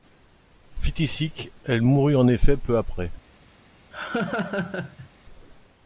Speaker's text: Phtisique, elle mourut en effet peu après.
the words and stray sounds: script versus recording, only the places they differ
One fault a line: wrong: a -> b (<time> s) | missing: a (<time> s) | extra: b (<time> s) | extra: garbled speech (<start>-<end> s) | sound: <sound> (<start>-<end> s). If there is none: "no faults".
sound: laugh (3.9-5.1 s)